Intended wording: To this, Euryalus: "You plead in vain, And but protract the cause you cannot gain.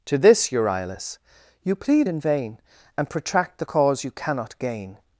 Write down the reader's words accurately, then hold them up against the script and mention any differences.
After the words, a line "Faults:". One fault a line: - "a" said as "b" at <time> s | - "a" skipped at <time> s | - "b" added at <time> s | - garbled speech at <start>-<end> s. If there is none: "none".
To this, Euryalus: "You plead in vain, And protract the cause you cannot gain.
Faults:
- "but" skipped at 3.1 s